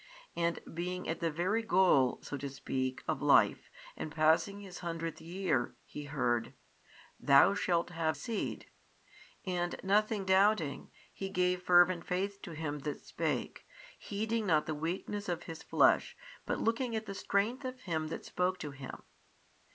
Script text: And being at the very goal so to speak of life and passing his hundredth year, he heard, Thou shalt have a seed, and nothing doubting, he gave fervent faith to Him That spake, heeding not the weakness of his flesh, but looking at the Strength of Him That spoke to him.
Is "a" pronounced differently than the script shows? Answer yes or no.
yes